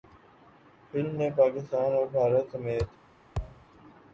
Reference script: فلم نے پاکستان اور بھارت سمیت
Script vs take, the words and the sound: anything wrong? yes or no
yes